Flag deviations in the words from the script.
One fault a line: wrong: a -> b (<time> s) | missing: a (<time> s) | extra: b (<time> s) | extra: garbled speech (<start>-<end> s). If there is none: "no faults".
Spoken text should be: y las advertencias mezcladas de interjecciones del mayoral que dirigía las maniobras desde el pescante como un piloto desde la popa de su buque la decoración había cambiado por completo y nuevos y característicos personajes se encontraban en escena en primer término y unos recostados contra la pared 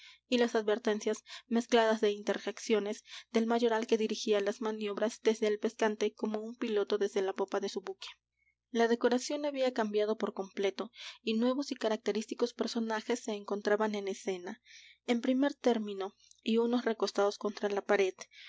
no faults